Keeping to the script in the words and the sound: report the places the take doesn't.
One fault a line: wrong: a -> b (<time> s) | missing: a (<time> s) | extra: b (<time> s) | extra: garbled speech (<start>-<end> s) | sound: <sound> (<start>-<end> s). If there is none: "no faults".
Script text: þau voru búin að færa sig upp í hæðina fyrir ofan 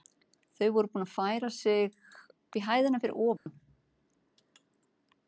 sound: dropout (3.4-3.5 s)